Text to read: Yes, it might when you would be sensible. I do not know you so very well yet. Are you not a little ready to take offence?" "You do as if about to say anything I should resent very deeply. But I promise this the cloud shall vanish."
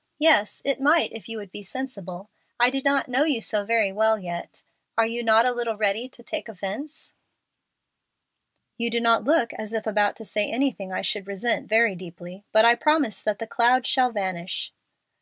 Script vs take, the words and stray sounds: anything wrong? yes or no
yes